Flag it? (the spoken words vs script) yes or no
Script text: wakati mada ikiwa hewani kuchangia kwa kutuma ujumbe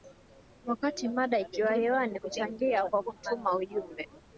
no